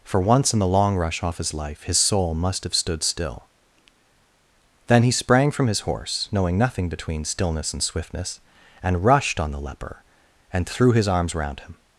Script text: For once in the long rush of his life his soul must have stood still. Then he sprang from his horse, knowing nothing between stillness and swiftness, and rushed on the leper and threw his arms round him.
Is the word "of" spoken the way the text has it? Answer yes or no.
no